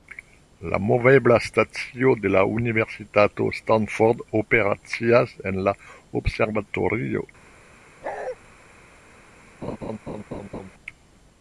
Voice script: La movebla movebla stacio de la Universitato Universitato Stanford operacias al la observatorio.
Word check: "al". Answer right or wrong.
wrong